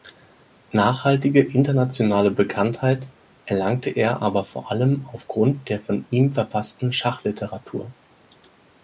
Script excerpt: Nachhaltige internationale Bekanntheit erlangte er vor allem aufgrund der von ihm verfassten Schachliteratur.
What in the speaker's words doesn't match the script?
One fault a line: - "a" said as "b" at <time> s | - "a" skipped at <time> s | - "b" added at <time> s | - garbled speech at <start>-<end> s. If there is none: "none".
- "aber" added at 4.2 s